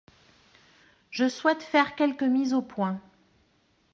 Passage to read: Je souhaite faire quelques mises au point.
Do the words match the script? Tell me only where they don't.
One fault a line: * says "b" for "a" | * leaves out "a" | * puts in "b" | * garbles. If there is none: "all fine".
all fine